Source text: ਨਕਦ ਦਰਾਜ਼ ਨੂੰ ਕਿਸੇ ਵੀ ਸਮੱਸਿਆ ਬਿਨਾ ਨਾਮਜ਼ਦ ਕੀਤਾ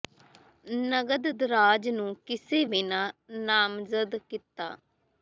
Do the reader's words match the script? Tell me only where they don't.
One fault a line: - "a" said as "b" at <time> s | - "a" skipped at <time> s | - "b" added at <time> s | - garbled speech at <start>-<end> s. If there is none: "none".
- "ਵੀ ਸਮੱਸਿਆ" skipped at 2.6 s